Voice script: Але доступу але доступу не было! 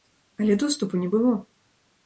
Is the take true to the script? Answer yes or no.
no